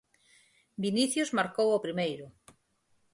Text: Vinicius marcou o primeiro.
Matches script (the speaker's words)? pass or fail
pass